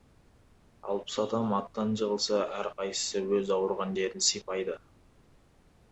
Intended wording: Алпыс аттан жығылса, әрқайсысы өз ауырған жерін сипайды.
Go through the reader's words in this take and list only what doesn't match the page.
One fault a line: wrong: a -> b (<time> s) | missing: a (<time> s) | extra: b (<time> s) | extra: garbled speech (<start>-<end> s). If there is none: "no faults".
extra: адам (1.2 s)